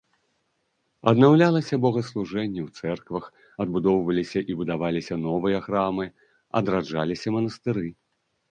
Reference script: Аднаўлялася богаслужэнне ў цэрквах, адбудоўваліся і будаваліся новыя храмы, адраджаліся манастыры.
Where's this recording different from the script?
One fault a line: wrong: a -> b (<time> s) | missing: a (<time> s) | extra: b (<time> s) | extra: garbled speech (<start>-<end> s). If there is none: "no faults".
no faults